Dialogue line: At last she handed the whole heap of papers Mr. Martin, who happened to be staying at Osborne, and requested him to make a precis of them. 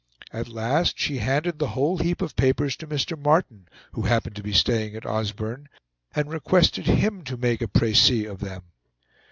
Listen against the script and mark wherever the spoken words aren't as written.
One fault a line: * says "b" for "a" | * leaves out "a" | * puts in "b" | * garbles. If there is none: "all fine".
* puts in "to"